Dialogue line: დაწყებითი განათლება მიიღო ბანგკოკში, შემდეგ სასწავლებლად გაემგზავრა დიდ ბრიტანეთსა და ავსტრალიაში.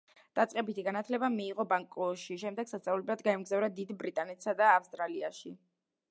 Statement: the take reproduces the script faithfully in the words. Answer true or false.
true